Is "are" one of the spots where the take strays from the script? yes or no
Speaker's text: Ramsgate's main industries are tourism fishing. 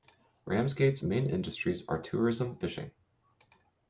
no